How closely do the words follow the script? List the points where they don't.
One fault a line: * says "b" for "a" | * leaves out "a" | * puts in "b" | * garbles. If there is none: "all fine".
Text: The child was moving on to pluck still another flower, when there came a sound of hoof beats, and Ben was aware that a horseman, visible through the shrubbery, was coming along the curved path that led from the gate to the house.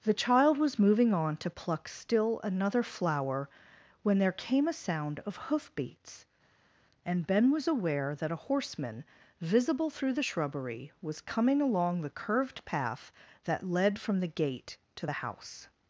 all fine